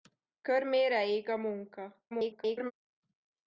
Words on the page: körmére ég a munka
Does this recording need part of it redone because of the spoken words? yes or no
yes